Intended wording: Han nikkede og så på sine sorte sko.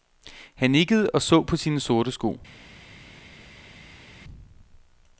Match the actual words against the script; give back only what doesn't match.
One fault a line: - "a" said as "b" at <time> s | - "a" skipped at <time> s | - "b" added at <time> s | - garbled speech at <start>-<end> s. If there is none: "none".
none